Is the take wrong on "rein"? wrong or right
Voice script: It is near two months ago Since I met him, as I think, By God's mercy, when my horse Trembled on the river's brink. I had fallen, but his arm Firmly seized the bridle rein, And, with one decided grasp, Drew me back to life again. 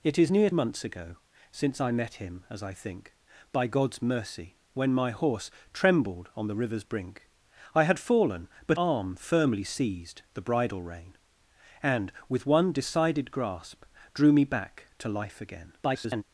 right